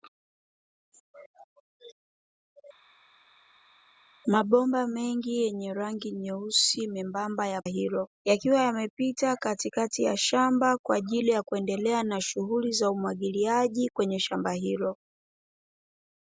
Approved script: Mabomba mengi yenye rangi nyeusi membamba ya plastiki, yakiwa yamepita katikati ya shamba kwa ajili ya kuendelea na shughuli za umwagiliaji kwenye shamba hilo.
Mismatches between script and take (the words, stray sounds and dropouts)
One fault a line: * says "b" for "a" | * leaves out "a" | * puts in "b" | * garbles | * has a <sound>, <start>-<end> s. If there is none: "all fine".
* says "hilo" for "plastiki"